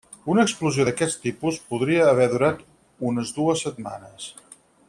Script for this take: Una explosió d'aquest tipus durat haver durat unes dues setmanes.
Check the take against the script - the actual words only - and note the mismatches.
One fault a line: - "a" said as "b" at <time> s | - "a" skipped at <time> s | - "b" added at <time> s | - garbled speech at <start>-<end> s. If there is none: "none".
- "durat" said as "podria" at 1.7 s